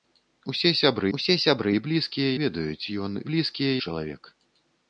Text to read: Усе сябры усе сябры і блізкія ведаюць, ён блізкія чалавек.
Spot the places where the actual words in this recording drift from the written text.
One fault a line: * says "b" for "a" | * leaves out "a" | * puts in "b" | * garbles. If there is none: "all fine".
all fine